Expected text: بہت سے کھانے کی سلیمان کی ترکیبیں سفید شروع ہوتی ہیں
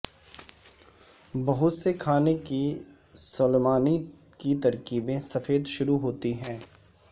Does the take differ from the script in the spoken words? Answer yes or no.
no